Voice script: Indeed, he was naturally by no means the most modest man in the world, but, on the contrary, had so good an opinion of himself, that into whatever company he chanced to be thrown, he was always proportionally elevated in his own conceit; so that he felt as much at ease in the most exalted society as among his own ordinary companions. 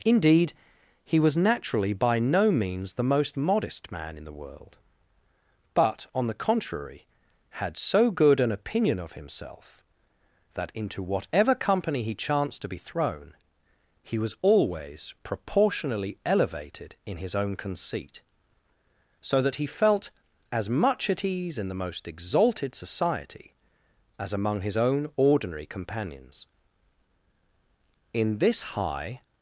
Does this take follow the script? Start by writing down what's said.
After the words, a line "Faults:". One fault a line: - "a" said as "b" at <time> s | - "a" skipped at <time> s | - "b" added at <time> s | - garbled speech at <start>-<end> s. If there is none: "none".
Indeed, he was naturally by no means the most modest man in the world, but, on the contrary, had so good an opinion of himself, that into whatever company he chanced to be thrown, he was always proportionally elevated in his own conceit; so that he felt as much at ease in the most exalted society as among his own ordinary companions. In this high
Faults:
- "In this high" added at 28.1 s